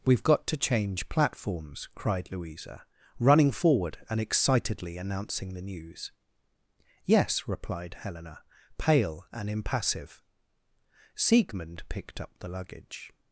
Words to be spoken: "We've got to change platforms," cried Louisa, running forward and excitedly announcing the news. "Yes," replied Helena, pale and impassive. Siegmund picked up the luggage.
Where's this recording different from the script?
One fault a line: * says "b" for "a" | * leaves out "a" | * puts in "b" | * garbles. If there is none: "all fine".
all fine